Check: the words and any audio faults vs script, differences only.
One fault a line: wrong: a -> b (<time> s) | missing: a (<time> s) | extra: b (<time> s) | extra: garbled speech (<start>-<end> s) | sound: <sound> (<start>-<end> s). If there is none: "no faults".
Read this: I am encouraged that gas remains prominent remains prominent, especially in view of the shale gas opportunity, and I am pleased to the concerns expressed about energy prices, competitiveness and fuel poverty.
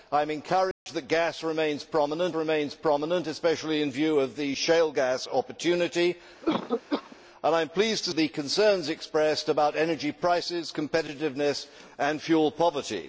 sound: dropout (0.7-0.9 s)
sound: cough (6.4-7.2 s)